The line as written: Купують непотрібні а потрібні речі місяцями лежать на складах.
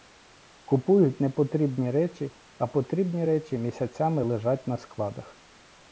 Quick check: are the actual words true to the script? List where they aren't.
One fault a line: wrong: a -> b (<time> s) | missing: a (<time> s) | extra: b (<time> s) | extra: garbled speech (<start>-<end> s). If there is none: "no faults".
extra: речі (1.9 s)